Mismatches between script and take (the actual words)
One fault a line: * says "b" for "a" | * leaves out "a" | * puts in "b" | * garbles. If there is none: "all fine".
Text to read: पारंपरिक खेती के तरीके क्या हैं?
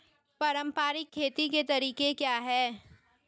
all fine